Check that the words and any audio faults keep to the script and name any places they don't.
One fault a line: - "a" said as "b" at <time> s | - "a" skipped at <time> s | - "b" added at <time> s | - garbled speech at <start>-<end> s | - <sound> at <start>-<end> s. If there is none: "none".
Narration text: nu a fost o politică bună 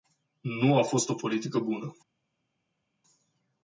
none